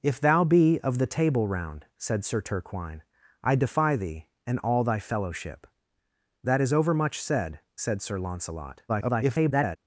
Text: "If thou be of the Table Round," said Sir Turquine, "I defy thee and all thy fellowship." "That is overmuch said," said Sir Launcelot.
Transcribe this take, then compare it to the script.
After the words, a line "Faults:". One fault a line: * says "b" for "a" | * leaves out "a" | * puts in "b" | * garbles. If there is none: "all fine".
"If thou be of the Table Round," said Sir Turquine, "I defy thee and all thy fellowship." "That is overmuch said," said Sir Launcelot. [garbled]
Faults:
* garbles